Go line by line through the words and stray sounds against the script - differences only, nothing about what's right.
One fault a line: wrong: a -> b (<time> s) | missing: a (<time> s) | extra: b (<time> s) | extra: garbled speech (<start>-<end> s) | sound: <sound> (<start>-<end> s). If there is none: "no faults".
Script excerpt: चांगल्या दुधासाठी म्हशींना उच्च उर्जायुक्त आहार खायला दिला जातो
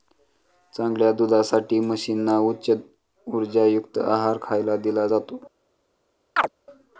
sound: chirp (6.4-6.5 s)